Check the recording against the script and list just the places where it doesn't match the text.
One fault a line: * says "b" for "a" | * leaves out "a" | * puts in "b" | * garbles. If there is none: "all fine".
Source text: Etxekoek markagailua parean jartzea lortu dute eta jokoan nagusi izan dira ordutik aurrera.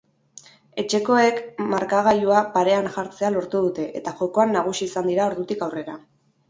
all fine